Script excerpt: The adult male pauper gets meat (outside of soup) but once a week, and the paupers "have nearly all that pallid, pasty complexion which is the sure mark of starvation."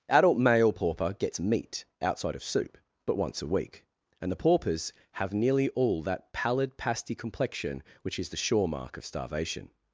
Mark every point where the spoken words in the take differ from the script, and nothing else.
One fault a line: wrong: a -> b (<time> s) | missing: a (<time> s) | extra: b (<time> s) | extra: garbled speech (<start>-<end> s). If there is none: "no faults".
missing: The (0.1 s)